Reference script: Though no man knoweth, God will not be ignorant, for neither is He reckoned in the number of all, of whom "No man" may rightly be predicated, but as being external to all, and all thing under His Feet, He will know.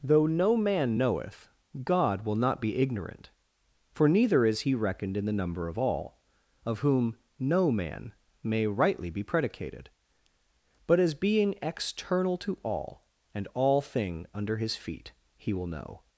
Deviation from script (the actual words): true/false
false